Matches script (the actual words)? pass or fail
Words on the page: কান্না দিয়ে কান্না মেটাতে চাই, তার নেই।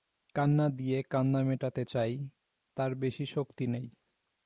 fail